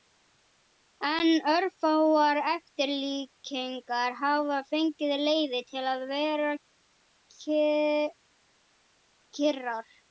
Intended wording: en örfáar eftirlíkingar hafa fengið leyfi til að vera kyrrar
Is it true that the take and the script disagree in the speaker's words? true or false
false